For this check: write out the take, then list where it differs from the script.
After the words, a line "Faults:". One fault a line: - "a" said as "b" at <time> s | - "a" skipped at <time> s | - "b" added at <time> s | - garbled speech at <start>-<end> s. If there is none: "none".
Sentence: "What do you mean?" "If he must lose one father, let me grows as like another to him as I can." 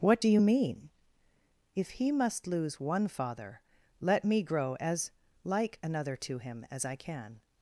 "What do you mean?" "If he must lose one father, let me grow as like another to him as I can."
Faults:
- "grows" said as "grow" at 4.4 s